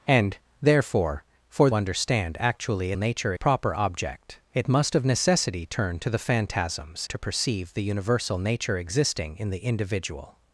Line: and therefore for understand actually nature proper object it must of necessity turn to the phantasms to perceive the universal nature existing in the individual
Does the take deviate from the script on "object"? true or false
false